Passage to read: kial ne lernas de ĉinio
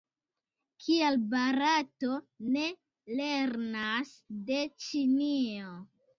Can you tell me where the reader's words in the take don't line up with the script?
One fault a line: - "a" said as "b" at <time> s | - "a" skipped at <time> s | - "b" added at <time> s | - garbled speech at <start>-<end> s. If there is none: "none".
- "barato" added at 1.3 s